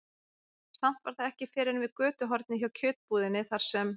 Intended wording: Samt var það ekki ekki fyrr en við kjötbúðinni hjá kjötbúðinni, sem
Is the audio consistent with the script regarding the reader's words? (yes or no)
no